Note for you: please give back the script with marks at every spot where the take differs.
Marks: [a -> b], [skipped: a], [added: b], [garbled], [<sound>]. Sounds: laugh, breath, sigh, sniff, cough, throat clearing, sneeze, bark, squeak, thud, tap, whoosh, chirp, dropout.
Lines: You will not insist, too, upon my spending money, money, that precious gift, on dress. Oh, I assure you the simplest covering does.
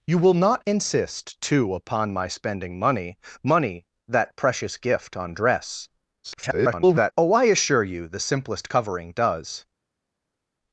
You will not insist, too, upon my spending money, money, that precious gift, on dress. [garbled] Oh, I assure you the simplest covering does.